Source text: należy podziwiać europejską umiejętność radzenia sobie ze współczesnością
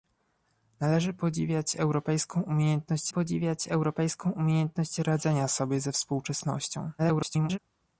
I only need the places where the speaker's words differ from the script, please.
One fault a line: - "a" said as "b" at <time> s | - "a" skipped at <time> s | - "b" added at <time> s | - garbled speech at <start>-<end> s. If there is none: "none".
- "podziwiać europejską umiejętność" added at 3.1 s
- garbled speech at 7.0-7.6 s